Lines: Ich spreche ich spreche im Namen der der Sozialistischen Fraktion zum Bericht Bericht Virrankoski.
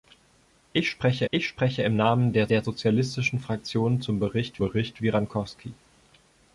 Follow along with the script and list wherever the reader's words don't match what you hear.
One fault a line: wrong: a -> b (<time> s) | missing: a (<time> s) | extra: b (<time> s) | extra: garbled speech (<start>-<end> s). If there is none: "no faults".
no faults